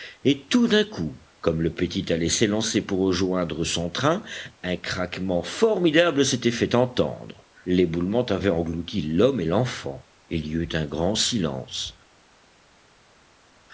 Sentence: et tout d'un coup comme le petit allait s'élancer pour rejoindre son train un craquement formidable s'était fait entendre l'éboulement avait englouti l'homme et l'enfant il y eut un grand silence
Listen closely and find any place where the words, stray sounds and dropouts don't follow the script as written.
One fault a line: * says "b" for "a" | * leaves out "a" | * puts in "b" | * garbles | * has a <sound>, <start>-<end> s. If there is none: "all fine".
all fine